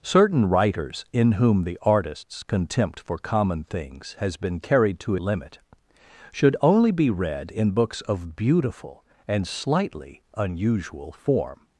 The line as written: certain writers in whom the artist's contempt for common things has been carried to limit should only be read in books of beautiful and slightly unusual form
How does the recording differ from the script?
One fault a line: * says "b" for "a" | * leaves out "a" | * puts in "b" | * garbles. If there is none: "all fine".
all fine